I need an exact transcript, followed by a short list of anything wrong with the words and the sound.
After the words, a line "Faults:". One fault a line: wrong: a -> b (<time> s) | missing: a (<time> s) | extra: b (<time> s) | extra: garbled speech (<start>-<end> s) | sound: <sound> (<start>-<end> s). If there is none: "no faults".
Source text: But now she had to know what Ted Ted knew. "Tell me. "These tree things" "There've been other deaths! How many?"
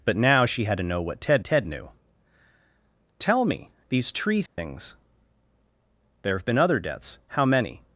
But now she had to know what Ted Ted knew. "Tell me. "These tree things" "There've been other deaths! How many?"
Faults:
sound: dropout (4.5-4.6 s)